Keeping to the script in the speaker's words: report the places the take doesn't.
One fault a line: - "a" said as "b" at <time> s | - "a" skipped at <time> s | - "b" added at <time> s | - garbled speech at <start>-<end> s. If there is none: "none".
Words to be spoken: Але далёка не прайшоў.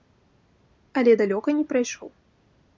none